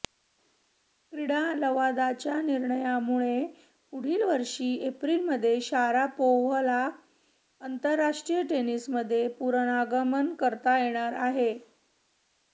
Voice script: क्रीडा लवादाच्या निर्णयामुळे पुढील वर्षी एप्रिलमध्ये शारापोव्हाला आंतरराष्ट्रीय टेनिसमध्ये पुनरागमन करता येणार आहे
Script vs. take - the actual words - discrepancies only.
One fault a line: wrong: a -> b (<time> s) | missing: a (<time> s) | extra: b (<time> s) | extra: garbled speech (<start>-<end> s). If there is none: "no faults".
no faults